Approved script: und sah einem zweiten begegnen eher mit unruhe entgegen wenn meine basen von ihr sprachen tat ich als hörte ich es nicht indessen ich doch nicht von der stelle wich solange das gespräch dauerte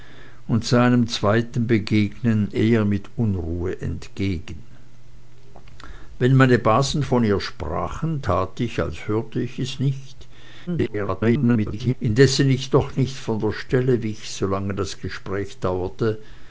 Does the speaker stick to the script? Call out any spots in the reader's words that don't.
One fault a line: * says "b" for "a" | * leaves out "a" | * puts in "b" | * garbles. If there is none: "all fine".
* garbles